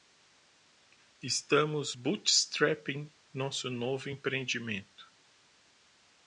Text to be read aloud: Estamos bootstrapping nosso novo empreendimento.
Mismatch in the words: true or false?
false